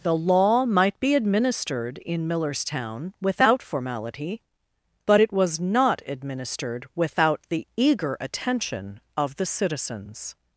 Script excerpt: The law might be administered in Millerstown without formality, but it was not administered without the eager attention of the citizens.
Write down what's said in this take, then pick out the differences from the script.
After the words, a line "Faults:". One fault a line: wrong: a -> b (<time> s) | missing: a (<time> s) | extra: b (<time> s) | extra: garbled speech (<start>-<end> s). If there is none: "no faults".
The law might be administered in Millerstown without formality, but it was not administered without the eager attention of the citizens.
Faults:
no faults